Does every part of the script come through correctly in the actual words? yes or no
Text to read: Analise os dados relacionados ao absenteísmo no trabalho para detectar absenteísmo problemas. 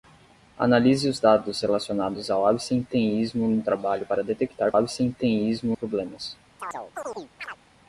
yes